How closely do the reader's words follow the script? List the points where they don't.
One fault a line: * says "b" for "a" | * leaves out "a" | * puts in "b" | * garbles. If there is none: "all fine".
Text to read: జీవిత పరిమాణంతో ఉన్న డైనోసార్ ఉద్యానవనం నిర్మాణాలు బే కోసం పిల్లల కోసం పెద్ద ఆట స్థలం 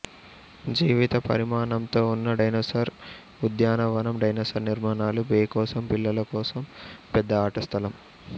* puts in "డైనోసార్"